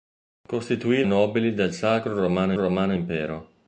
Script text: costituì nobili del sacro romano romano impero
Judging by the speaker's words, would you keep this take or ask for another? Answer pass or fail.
pass